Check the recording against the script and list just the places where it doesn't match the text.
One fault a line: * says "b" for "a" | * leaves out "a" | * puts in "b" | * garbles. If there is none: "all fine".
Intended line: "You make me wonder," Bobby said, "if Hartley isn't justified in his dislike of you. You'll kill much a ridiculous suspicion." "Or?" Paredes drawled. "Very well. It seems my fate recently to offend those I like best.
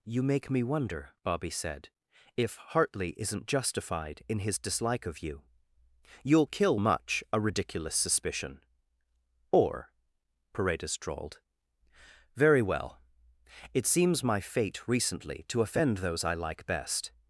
all fine